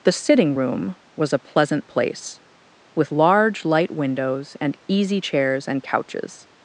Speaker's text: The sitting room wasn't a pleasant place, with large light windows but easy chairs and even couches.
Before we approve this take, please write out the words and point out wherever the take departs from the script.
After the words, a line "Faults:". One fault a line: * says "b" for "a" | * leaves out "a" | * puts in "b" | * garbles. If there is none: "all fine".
The sitting room was a pleasant place, with large light windows and easy chairs and couches.
Faults:
* says "was" for "wasn't"
* says "and" for "but"
* leaves out "even"